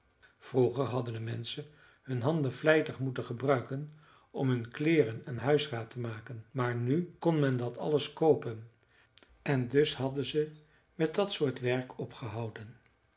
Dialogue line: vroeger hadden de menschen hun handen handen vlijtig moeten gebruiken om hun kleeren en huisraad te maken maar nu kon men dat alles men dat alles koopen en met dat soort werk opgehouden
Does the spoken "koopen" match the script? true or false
false